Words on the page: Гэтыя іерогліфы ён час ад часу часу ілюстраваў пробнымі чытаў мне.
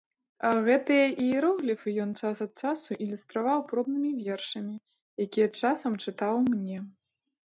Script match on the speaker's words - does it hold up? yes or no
no